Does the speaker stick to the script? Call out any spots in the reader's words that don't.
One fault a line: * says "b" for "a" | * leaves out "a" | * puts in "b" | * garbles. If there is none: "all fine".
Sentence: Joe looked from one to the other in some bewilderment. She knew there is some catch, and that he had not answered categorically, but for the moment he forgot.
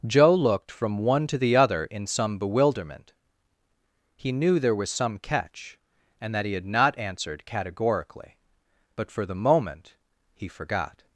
* says "He" for "She"
* says "was" for "is"